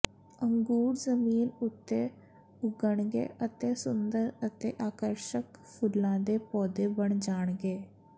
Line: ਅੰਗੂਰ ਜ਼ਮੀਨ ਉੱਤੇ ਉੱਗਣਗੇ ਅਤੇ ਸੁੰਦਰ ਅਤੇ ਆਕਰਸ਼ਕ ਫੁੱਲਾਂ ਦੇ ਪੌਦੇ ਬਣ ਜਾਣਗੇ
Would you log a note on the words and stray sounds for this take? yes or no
no